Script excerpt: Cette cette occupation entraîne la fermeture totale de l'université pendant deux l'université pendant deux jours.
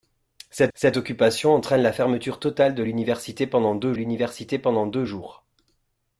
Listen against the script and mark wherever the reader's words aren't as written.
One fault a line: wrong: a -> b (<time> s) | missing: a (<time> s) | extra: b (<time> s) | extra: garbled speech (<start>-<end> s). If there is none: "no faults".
no faults